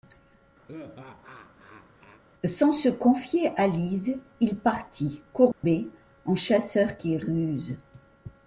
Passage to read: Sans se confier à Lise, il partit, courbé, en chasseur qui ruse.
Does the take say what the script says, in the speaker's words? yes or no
yes